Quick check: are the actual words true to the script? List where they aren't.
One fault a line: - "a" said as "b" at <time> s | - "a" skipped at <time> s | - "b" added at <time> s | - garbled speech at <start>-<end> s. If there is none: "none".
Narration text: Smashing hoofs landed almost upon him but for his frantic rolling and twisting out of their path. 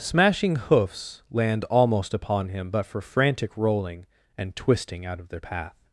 - "landed" said as "land" at 1.3 s
- "his" skipped at 3.0 s